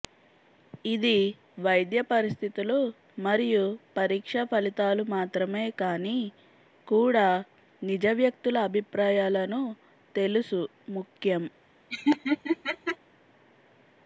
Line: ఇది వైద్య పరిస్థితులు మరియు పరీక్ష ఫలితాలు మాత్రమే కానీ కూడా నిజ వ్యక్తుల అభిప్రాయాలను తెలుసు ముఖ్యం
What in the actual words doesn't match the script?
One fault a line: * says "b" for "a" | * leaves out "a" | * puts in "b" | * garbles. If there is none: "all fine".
all fine